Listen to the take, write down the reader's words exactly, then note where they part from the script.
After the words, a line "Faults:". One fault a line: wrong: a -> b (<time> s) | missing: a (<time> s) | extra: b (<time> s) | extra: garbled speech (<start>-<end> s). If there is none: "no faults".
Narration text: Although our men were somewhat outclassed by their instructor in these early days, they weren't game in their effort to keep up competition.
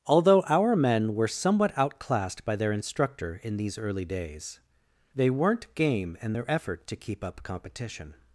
Although our men were somewhat outclassed by their instructor in these early days, they weren't game in their effort to keep up competition.
Faults:
no faults